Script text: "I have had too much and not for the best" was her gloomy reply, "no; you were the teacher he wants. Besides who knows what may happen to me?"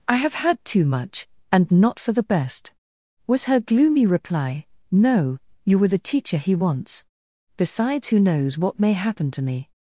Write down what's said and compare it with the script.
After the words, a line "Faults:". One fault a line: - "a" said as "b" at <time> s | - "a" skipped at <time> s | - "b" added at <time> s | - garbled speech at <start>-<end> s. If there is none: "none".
"I have had too much and not for the best" was her gloomy reply, "no; you were the teacher he wants. Besides who knows what may happen to me?"
Faults:
none